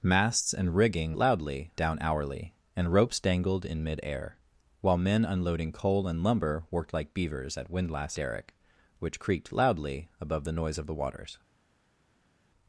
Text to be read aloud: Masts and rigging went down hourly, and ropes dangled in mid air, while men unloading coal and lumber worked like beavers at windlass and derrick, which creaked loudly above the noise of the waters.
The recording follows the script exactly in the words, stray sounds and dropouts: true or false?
false